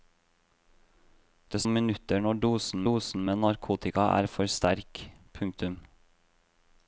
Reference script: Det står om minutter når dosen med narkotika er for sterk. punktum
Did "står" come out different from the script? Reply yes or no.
yes